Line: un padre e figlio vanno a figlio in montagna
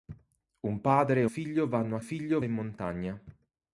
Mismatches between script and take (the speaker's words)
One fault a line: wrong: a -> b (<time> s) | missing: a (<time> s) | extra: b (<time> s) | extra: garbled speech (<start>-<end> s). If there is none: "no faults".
no faults